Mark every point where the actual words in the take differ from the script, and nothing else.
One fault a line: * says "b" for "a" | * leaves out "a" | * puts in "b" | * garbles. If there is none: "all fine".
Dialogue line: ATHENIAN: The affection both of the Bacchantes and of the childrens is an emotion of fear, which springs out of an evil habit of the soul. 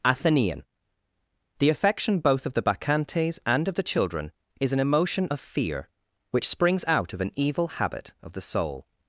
* says "children" for "childrens"